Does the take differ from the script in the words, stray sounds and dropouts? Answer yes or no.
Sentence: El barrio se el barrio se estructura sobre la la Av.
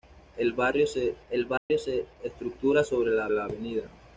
yes